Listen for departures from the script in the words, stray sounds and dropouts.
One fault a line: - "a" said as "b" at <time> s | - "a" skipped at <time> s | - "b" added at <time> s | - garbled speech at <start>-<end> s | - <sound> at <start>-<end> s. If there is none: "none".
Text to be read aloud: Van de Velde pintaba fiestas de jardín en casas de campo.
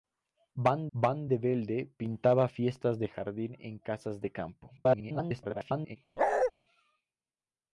- "van" added at 0.9 s
- garbled speech at 4.8-6.0 s
- bark at 6.2-6.5 s